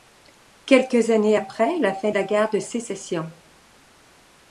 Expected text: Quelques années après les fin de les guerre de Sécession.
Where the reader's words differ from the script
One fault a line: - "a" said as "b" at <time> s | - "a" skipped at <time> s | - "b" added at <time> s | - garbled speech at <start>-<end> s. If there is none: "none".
- "les" said as "la" at 1.8 s
- "les" said as "la" at 2.1 s